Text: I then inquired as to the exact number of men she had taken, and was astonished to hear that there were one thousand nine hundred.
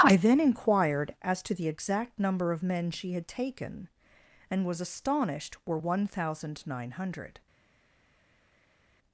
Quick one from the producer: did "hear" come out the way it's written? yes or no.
no